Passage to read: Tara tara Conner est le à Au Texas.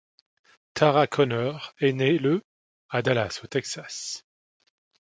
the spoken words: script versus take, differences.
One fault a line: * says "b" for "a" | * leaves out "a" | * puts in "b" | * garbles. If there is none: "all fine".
* leaves out "tara"
* puts in "née"
* puts in "Dallas"